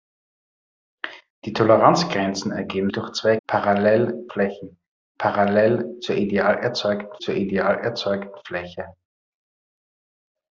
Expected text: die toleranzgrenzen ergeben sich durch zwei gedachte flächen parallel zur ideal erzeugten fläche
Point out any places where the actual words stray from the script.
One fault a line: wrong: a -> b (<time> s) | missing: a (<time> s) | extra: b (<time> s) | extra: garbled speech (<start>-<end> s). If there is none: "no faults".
missing: sich (2.9 s)
wrong: gedachte -> parallel (3.5 s)
extra: zur ideal erzeugten (7.2 s)